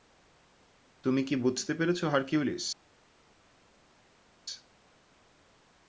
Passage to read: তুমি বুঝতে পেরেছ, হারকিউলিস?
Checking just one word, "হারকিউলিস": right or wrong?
right